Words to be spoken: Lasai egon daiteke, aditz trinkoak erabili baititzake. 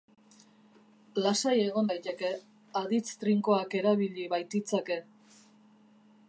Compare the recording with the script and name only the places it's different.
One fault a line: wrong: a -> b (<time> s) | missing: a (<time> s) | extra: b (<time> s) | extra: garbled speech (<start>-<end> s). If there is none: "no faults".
no faults